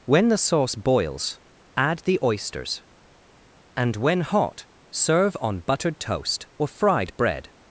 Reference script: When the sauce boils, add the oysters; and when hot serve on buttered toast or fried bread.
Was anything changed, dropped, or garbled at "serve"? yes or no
no